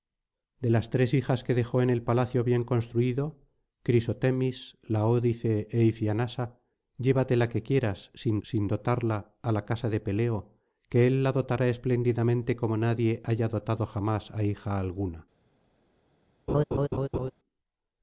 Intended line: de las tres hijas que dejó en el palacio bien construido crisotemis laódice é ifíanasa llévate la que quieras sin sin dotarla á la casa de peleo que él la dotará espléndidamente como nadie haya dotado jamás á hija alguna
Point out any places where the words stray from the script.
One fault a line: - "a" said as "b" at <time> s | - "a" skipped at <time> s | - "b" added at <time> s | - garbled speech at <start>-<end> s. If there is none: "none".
none